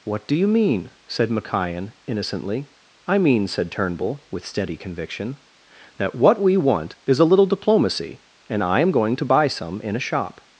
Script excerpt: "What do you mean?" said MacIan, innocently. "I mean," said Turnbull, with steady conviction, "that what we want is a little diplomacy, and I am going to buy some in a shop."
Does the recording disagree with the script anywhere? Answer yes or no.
no